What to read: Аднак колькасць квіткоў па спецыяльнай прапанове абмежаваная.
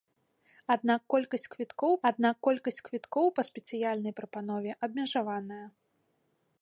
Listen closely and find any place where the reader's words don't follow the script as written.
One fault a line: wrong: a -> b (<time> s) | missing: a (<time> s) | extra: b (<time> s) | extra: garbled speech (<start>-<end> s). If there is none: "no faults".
extra: аднак колькасць квіткоў (2.1 s)